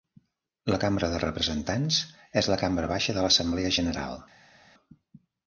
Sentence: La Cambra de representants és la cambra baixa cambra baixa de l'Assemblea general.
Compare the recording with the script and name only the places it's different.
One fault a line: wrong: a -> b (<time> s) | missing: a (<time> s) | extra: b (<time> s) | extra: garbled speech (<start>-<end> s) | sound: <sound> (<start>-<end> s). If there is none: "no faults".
missing: cambra baixa (3.2 s)